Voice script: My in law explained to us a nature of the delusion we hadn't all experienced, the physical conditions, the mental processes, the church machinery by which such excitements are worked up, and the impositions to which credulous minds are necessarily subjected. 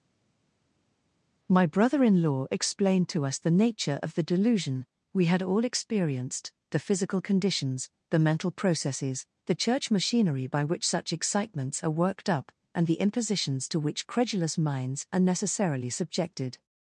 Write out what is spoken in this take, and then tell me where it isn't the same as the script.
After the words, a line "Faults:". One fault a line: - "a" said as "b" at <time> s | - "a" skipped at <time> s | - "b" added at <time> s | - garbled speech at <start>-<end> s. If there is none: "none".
My brother in law explained to us the nature of the delusion we had all experienced, the physical conditions, the mental processes, the church machinery by which such excitements are worked up, and the impositions to which credulous minds are necessarily subjected.
Faults:
- "brother" added at 1.7 s
- "a" said as "the" at 3.4 s
- "hadn't" said as "had" at 5.3 s